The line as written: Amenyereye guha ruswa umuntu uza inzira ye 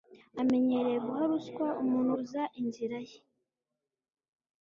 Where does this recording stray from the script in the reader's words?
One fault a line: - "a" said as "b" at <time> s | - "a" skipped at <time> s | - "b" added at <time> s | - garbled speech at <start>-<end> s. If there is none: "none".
none